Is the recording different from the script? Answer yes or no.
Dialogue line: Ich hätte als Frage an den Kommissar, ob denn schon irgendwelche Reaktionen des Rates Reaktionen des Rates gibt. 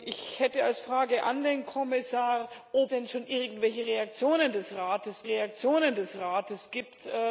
no